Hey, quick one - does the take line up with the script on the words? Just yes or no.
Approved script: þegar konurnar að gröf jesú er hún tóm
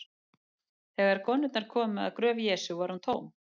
no